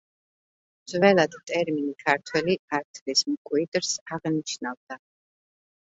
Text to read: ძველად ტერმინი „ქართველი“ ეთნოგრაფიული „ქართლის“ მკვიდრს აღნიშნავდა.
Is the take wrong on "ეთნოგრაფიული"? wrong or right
wrong